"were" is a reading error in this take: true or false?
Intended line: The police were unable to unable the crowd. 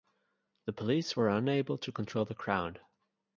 false